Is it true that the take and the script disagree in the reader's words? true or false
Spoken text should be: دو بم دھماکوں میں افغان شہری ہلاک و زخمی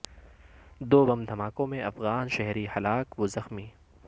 false